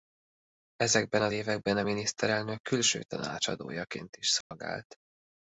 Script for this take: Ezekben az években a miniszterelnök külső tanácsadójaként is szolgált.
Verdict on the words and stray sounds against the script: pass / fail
fail